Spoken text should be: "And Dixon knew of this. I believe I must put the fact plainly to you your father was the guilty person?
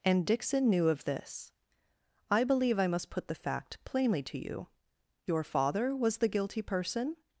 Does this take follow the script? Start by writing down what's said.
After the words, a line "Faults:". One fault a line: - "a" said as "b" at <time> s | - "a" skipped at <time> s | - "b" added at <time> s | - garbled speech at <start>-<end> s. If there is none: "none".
"And Dixon knew of this. I believe I must put the fact plainly to you your father was the guilty person?
Faults:
none